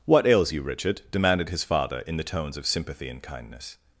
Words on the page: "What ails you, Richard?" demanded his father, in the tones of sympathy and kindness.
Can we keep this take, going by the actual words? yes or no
yes